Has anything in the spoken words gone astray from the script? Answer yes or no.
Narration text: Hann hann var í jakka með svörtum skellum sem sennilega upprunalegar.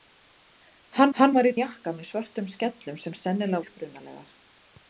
no